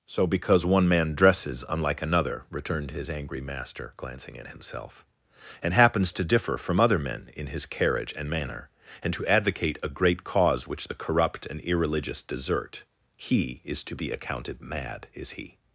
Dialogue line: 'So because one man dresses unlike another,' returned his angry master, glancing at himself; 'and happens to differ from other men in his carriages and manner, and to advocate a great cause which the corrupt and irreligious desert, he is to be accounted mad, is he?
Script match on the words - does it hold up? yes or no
no